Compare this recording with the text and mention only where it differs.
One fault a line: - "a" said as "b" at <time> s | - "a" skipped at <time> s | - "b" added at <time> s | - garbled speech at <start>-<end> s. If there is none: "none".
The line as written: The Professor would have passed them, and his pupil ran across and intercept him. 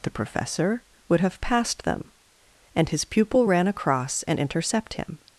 none